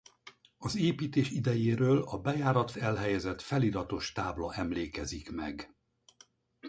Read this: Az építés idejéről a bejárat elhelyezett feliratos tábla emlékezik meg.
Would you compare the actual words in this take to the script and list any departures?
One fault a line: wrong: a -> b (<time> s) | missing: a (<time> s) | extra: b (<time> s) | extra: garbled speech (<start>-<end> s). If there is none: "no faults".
no faults